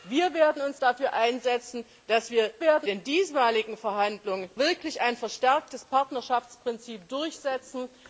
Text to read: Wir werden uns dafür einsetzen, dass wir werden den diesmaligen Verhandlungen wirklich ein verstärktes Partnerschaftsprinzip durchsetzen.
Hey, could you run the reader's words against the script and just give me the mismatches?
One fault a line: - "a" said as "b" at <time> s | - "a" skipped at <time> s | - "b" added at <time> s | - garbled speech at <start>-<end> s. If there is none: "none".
none